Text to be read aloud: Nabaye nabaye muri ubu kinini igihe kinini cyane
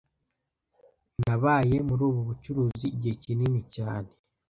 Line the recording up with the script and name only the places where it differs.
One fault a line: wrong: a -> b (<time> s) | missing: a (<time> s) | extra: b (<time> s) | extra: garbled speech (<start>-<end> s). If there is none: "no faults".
missing: nabaye (1.8 s)
wrong: kinini -> bucuruzi (2.3 s)